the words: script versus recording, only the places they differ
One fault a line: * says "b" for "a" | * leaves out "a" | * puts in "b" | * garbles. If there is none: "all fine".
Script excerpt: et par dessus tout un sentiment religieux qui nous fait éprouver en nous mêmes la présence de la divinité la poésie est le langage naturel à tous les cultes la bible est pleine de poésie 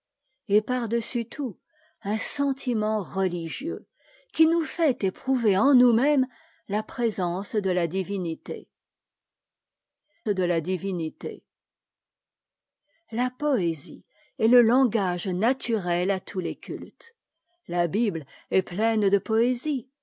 * puts in "de la divinité"